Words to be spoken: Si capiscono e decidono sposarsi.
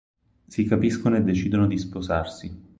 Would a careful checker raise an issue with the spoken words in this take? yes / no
yes